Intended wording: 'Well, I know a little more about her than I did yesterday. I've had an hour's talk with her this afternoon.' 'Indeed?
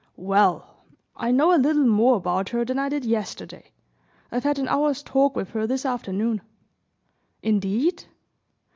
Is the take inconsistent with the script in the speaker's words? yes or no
no